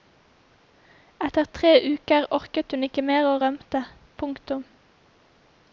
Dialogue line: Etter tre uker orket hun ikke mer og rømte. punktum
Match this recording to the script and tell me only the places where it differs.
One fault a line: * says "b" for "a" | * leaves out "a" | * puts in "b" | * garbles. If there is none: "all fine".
all fine